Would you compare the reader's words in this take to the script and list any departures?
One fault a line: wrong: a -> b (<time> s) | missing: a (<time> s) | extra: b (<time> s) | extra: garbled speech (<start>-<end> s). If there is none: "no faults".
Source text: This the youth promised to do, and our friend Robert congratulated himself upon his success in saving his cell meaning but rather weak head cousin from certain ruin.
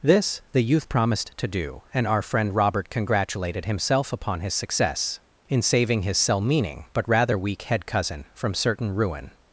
no faults